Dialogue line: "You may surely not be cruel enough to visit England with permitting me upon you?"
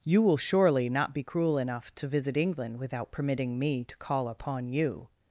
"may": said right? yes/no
no